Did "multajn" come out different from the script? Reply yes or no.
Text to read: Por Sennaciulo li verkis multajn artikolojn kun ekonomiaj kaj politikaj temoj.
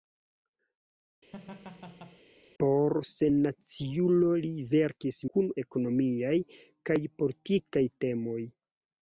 yes